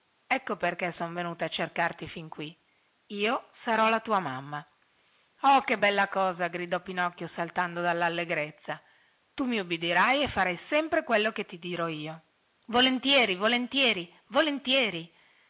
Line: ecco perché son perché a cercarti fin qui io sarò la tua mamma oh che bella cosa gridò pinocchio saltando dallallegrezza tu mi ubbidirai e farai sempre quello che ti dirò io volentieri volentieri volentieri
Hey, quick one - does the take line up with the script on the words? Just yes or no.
no